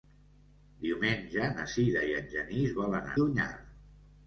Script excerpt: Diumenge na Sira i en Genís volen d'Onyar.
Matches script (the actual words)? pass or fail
pass